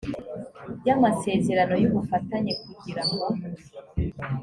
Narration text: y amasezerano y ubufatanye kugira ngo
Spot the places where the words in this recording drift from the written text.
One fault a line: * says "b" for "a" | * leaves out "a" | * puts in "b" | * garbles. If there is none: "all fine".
all fine